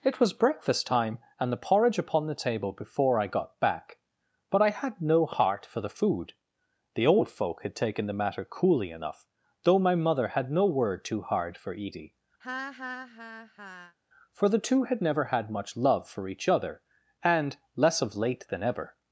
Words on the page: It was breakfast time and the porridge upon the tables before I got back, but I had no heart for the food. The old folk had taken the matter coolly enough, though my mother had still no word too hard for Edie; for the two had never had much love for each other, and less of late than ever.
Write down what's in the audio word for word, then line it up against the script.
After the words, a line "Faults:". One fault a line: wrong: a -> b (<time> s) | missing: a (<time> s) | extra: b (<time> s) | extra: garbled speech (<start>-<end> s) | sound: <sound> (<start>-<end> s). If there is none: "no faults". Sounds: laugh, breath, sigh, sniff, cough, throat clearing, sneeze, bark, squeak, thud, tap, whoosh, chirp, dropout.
It was breakfast time and the porridge upon the table before I got back, but I had no heart for the food. The old folk had taken the matter coolly enough, though my mother had no word too hard for Edie; for the two had never had much love for each other, and less of late than ever.
Faults:
wrong: tables -> table (2.4 s)
missing: still (10.5 s)
sound: laugh (12.4-14.0 s)